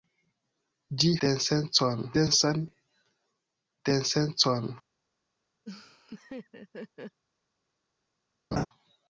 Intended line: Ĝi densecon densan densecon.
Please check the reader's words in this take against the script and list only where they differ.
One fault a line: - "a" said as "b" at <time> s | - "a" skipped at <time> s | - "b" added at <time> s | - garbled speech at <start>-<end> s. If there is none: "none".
none